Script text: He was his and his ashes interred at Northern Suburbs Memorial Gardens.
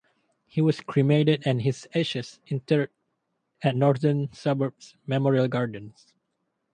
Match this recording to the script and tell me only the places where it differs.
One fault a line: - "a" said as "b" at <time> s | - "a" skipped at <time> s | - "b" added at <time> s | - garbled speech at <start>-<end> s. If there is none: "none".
- "his" said as "cremated" at 0.8 s